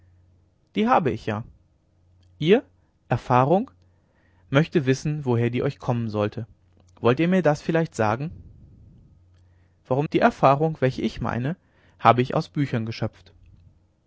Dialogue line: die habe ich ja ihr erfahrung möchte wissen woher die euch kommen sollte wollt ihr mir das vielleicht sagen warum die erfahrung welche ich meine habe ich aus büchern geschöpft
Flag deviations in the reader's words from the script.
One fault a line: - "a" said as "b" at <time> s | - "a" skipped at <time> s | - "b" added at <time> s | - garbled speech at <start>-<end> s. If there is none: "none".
none